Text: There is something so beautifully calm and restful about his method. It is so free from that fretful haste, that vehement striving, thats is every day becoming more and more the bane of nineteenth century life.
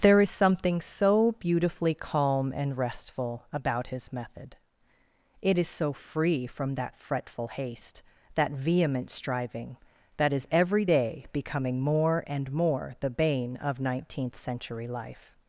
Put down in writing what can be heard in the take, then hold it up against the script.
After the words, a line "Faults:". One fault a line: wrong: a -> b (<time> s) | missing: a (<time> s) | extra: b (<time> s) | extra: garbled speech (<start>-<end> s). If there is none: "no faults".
There is something so beautifully calm and restful about his method. It is so free from that fretful haste, that vehement striving, that is every day becoming more and more the bane of nineteenth century life.
Faults:
wrong: thats -> that (10.2 s)